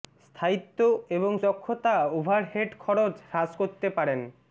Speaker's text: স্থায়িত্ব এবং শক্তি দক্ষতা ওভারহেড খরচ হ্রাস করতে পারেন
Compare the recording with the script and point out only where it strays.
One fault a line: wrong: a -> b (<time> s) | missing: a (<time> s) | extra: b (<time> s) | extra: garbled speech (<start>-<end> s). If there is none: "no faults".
missing: শক্তি (1.3 s)